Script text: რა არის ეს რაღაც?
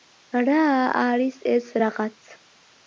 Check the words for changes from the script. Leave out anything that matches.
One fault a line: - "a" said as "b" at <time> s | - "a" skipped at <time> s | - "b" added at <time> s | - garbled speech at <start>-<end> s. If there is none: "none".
none